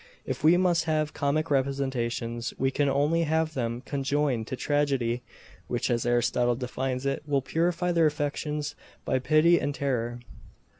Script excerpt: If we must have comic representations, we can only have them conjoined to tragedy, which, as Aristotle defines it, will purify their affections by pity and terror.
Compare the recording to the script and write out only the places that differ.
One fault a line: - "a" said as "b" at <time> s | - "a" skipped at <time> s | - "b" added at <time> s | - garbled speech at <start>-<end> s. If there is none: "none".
none